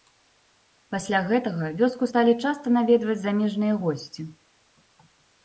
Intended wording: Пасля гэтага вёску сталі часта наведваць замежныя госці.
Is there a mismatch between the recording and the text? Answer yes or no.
no